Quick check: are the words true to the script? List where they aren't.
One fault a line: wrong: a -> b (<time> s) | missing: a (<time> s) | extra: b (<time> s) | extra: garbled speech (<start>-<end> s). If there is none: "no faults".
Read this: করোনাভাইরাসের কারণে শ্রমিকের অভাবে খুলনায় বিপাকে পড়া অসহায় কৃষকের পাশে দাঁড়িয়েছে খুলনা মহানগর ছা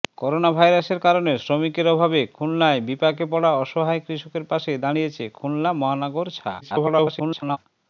extra: garbled speech (6.6-7.6 s)